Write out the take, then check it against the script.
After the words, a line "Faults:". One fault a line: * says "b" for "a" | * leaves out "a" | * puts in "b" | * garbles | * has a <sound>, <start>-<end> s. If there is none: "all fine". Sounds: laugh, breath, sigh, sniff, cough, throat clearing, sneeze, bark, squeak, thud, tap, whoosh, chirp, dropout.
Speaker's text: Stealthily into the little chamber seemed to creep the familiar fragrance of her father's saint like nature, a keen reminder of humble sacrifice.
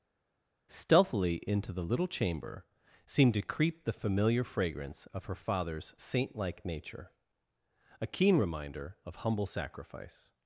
Stealthily into the little chamber seemed to creep the familiar fragrance of her father's saint like nature, a keen reminder of humble sacrifice.
Faults:
all fine